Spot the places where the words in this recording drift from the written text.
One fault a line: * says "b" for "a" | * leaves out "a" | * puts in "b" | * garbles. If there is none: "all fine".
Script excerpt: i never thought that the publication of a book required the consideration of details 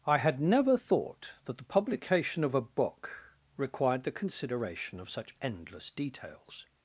* puts in "had"
* puts in "such endless"